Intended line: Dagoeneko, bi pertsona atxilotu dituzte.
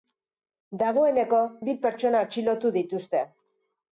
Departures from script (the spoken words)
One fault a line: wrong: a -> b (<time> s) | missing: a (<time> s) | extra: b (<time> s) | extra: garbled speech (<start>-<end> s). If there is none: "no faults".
no faults